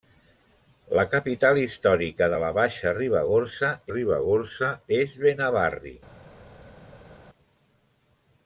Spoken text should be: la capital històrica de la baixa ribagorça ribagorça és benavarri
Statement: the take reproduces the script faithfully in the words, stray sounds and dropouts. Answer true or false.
true